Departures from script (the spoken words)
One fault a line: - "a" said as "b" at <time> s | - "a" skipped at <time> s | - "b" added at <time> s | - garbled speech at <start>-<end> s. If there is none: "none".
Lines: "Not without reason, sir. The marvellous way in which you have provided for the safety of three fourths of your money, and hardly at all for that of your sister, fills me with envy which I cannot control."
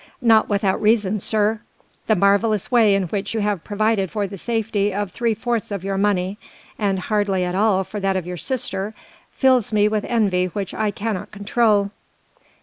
none